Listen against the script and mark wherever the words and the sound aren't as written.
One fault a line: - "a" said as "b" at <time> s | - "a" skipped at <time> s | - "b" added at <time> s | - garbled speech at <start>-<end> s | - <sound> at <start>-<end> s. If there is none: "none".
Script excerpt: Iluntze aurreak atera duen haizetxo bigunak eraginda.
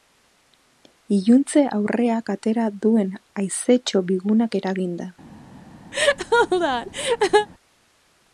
- laugh at 5.9-7.5 s